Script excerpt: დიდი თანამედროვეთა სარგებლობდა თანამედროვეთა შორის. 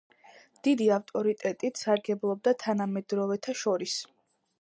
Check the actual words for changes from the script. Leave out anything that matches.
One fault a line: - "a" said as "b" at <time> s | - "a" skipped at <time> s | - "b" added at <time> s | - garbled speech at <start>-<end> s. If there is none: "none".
- "თანამედროვეთა" said as "ავტორიტეტით" at 0.9 s